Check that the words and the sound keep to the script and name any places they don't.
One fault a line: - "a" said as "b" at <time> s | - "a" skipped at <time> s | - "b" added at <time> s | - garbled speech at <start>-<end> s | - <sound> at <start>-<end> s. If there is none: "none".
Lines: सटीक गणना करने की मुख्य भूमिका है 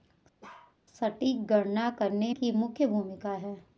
- bark at 0.4-0.8 s